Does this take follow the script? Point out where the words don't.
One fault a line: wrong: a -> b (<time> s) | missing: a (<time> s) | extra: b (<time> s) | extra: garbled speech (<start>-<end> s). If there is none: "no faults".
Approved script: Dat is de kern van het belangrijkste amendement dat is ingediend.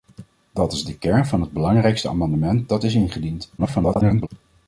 extra: garbled speech (3.6-4.3 s)